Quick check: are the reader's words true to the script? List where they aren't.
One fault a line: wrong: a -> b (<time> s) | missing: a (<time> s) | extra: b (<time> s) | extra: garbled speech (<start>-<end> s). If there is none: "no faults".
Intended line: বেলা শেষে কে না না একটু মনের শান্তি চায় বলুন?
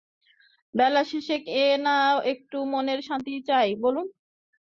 missing: না (2.0 s)